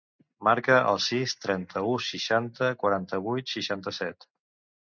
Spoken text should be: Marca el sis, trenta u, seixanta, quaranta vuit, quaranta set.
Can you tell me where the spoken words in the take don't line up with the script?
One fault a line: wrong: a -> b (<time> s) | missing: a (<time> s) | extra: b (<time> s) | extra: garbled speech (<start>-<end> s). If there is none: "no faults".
wrong: quaranta -> seixanta (3.6 s)